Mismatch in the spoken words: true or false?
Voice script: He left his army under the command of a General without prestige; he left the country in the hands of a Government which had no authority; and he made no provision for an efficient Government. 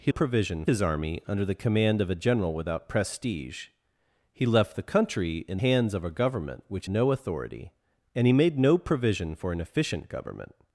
true